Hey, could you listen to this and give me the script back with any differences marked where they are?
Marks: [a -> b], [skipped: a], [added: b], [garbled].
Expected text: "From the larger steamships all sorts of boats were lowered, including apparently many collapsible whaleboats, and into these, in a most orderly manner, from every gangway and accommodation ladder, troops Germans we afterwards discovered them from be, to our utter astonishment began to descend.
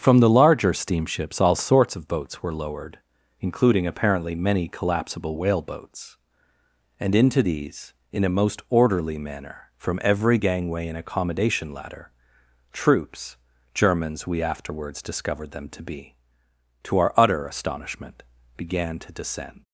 "From the larger steamships all sorts of boats were lowered, including apparently many collapsible whaleboats, and into these, in a most orderly manner, from every gangway and accommodation ladder, troops Germans we afterwards discovered them [from -> to] be, to our utter astonishment began to descend.